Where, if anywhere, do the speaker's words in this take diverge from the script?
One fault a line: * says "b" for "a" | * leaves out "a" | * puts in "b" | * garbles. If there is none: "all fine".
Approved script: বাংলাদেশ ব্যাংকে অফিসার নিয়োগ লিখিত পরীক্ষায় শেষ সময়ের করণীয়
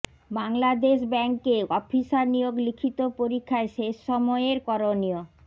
all fine